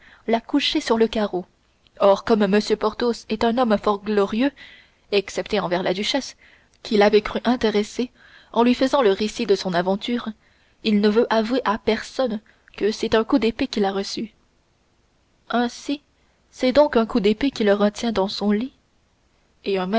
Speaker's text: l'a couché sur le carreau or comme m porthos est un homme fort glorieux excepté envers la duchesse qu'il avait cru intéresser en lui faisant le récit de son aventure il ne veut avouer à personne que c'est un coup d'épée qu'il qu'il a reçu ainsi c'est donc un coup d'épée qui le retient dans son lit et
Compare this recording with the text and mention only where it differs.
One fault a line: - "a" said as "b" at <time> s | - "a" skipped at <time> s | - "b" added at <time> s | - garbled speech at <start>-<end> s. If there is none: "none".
- "qu'il" skipped at 13.8 s